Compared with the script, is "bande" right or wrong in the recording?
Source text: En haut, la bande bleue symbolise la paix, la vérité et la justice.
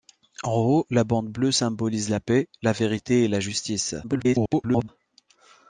right